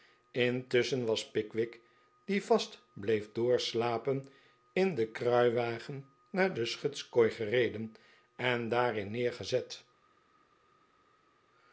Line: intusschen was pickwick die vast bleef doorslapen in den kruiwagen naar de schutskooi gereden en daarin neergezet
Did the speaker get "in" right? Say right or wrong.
right